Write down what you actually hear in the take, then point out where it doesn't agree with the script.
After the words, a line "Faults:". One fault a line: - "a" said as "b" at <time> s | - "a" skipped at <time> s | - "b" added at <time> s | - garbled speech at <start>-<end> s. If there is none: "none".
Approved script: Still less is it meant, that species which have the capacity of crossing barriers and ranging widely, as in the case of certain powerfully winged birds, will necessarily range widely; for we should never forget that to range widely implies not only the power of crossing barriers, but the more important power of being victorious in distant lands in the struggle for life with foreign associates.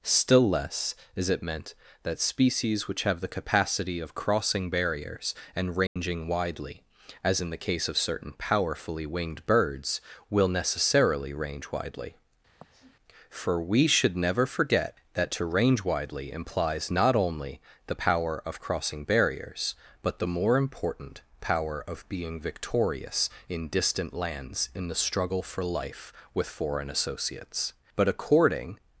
Still less is it meant, that species which have the capacity of crossing barriers and ranging widely, as in the case of certain powerfully winged birds, will necessarily range widely; for we should never forget that to range widely implies not only the power of crossing barriers, but the more important power of being victorious in distant lands in the struggle for life with foreign associates. But according
Faults:
- "But according" added at 28.0 s